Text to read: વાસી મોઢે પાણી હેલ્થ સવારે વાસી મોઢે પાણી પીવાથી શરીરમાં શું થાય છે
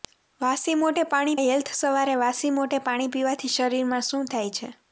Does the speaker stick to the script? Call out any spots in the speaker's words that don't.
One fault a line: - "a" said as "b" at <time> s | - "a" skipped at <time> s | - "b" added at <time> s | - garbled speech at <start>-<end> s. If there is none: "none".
none